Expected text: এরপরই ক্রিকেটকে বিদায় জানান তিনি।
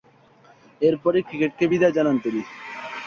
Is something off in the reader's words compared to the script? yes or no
no